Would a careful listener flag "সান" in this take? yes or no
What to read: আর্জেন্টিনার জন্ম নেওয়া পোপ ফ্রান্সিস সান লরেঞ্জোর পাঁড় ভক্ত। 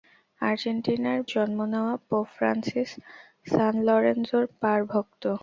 no